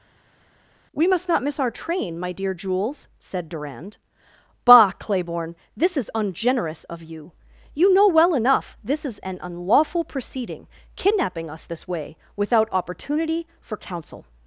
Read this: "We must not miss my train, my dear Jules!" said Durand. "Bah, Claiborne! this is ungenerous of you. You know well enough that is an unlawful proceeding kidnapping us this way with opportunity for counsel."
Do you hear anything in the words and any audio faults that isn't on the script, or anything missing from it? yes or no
yes